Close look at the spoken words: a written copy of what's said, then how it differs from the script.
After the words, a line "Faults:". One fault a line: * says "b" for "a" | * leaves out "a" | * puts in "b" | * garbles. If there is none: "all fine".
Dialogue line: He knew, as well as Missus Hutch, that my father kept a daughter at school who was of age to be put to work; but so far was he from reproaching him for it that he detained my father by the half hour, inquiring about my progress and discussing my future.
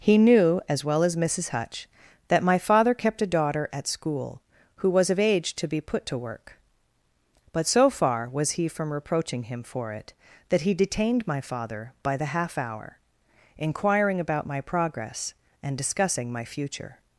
He knew, as well as Missus Hutch, that my father kept a daughter at school who was of age to be put to work; but so far was he from reproaching him for it that he detained my father by the half hour, inquiring about my progress and discussing my future.
Faults:
all fine